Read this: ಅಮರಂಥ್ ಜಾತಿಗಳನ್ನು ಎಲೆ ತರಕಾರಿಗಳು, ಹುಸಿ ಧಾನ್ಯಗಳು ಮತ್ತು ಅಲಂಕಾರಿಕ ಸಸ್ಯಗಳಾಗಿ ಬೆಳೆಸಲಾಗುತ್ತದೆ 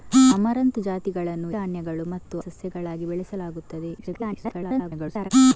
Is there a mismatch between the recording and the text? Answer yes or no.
yes